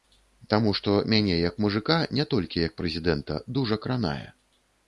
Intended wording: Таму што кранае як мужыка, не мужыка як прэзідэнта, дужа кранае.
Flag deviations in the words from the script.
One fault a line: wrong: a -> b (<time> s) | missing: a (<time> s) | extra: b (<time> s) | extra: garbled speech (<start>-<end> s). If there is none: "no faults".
wrong: кранае -> мяне (1.1 s)
wrong: мужыка -> толькі (2.3 s)